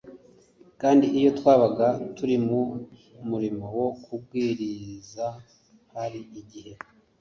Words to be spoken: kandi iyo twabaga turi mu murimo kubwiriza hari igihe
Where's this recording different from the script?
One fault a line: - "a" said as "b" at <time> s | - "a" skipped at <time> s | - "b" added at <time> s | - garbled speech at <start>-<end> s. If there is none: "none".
- "wo" added at 3.8 s